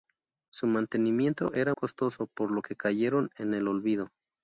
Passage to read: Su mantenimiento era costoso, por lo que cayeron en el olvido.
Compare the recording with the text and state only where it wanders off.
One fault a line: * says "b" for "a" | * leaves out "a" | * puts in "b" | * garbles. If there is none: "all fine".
all fine